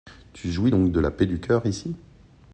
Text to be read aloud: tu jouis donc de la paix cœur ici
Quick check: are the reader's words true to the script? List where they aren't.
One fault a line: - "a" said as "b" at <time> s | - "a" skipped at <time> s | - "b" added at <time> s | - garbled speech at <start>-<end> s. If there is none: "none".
- "du" added at 1.2 s